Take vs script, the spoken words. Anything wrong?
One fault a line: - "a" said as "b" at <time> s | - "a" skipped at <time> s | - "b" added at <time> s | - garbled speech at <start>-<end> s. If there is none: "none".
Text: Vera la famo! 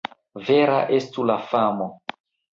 - "estu" added at 1.0 s